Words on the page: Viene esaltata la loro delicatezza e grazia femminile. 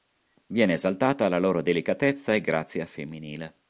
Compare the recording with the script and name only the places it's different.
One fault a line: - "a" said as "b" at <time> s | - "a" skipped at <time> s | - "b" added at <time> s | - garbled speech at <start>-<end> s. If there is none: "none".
none